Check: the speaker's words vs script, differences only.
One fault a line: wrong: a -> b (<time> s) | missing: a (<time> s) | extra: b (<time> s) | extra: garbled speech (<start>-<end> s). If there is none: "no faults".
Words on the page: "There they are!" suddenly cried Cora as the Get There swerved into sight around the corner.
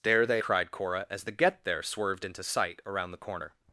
missing: are suddenly (0.4 s)